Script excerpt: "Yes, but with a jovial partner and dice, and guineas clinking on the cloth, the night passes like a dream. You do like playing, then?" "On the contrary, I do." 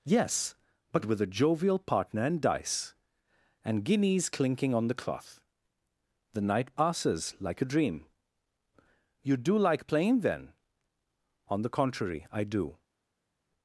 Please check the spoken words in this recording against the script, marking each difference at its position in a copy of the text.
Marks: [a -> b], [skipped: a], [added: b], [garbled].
"Yes, but with a jovial partner and dice, and guineas clinking on the cloth, the night passes like a dream. You do like playing, then?" "On the contrary, I do."